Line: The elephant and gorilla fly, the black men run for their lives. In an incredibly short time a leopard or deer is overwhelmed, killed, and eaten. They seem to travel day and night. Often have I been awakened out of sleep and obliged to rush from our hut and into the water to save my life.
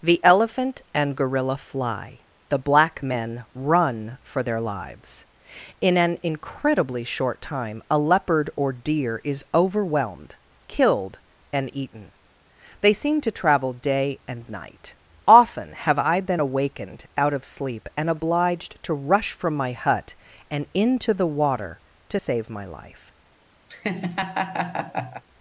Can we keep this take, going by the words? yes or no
no